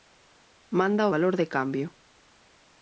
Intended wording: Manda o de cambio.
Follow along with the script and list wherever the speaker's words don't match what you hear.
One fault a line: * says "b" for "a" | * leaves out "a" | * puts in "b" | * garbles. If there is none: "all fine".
* puts in "valor"